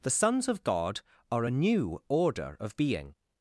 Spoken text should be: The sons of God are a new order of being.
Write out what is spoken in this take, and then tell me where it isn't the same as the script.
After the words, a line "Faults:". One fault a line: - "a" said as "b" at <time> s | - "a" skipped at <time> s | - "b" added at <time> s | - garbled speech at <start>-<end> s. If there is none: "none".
The sons of God are a new order of being.
Faults:
none